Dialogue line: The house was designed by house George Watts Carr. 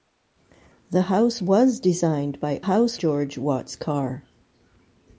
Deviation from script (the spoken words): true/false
false